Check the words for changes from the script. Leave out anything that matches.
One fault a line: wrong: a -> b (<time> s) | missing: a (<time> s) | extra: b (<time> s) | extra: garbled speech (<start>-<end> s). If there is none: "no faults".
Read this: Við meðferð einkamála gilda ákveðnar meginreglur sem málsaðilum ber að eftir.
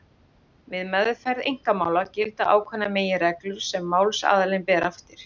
no faults